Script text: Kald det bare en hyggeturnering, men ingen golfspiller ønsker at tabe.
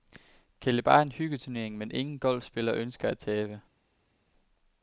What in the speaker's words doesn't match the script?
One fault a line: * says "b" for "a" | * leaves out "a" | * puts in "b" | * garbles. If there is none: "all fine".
all fine